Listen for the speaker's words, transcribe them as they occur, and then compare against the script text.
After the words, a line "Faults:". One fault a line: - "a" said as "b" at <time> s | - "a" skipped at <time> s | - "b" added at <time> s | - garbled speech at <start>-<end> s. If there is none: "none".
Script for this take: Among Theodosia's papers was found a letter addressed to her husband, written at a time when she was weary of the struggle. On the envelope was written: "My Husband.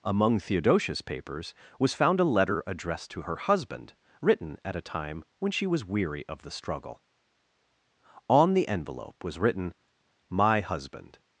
Among Theodosia's papers was found a letter addressed to her husband, written at a time when she was weary of the struggle. On the envelope was written: "My Husband.
Faults:
none